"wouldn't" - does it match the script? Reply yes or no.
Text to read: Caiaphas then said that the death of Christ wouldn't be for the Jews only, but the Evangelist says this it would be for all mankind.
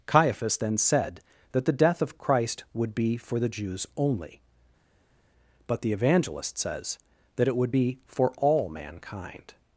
no